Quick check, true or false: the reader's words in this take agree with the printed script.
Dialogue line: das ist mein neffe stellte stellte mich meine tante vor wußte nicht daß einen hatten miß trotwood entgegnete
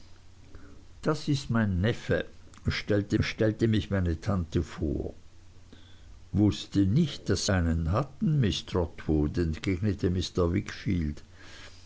true